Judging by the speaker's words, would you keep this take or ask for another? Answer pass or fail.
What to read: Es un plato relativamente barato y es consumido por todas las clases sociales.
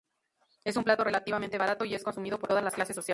pass